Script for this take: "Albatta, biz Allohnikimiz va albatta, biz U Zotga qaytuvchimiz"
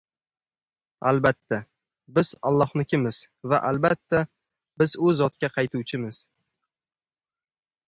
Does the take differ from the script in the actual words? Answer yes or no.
no